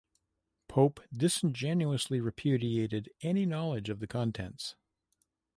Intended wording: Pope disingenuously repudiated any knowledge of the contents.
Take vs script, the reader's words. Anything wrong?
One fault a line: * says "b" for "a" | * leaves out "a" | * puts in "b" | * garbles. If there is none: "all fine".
all fine